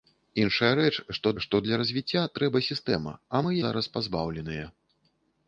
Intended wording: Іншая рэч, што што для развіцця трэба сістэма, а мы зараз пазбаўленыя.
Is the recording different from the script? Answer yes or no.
no